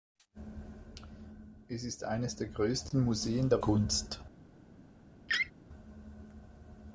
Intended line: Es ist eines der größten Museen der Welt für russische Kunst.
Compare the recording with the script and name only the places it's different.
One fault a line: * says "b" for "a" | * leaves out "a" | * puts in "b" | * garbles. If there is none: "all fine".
* leaves out "Welt für russische"